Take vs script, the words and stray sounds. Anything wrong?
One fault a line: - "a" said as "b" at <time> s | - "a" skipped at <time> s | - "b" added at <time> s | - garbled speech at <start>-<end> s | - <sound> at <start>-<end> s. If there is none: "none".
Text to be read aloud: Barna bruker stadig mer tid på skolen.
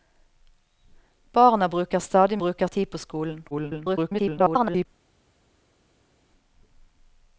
- "mer" said as "bruker" at 2.4 s
- garbled speech at 3.5-4.9 s